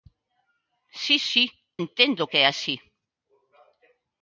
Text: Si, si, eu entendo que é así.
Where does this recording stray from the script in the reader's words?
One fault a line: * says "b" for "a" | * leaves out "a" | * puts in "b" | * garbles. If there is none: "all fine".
* leaves out "eu"